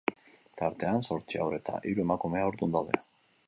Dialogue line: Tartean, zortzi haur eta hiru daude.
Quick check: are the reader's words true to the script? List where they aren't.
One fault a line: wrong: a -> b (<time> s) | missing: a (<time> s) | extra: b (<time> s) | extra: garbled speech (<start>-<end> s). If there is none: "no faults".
extra: emakume haurdun (2.1 s)